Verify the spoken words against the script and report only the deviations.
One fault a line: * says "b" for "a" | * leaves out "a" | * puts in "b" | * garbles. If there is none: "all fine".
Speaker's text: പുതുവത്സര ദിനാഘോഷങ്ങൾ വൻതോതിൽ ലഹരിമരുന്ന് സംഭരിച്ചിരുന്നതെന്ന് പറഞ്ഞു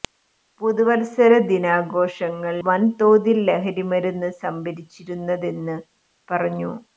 all fine